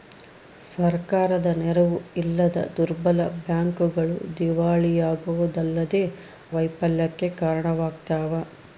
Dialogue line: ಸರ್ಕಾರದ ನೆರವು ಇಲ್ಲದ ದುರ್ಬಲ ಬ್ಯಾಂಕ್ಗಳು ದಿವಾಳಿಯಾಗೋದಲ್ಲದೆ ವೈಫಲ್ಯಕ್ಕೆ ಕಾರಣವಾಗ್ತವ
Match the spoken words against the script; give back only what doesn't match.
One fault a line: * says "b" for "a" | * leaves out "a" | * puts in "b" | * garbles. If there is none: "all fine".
all fine